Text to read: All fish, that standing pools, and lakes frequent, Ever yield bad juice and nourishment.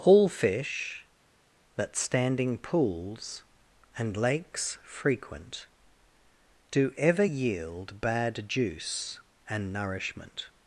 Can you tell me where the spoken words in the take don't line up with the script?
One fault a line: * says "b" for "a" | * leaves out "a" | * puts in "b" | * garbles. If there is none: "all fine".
* puts in "Do"